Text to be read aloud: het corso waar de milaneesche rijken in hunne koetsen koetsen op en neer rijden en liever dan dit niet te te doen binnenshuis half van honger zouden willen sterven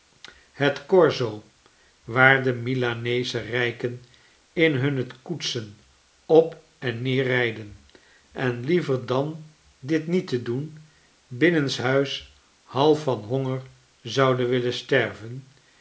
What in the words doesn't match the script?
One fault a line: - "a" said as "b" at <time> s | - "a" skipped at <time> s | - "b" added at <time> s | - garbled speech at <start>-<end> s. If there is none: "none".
- "koetsen" skipped at 5.8 s
- "te" skipped at 10.4 s